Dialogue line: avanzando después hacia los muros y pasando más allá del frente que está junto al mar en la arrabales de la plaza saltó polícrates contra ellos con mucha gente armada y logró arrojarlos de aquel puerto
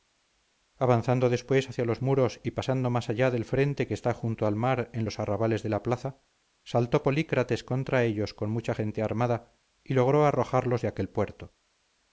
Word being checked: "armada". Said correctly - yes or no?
yes